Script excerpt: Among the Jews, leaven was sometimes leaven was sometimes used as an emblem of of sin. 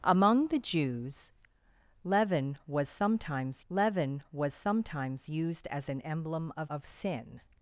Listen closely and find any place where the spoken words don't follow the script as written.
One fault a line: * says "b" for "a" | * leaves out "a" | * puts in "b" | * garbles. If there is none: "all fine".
all fine